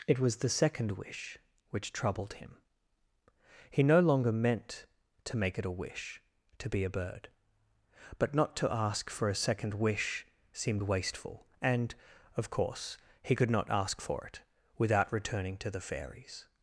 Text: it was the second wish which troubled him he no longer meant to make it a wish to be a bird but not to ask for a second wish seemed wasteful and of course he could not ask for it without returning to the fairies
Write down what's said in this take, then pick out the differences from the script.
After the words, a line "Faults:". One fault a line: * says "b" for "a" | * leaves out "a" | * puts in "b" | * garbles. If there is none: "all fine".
it was the second wish which troubled him he no longer meant to make it a wish to be a bird but not to ask for a second wish seemed wasteful and of course he could not ask for it without returning to the fairies
Faults:
all fine